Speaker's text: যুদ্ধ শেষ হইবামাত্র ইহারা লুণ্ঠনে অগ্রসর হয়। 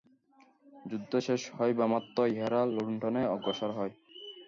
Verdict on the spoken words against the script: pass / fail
pass